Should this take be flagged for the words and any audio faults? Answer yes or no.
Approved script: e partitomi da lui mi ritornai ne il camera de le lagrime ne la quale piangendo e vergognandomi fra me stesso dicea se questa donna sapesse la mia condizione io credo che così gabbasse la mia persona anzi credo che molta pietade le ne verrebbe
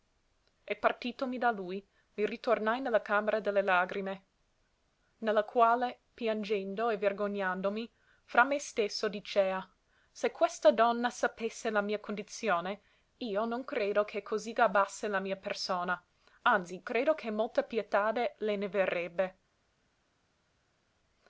yes